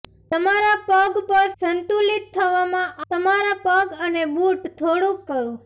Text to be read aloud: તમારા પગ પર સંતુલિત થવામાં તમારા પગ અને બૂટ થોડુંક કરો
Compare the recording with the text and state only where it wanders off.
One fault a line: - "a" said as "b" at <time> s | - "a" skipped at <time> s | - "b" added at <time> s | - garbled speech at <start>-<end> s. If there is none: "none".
none